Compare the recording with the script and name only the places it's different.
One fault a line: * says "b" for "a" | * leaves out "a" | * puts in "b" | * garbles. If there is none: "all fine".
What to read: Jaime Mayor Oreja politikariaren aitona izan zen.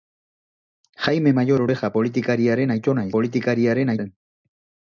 * says "politikariaren" for "izan"